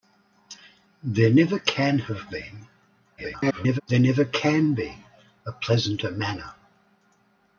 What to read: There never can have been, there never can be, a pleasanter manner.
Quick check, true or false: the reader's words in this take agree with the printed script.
false